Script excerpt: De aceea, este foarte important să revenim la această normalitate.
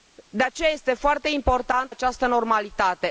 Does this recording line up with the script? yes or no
no